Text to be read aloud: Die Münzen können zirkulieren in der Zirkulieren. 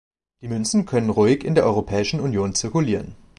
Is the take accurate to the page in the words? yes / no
no